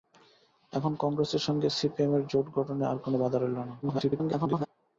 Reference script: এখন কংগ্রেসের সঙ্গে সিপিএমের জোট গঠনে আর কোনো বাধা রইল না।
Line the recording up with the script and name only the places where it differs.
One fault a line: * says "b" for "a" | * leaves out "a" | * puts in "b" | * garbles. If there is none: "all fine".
* garbles